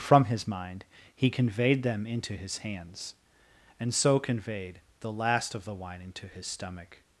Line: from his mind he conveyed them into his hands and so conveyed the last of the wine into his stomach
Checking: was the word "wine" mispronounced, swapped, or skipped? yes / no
no